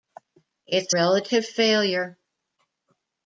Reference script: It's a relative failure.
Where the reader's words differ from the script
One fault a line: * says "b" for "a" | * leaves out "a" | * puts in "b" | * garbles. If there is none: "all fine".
* leaves out "a"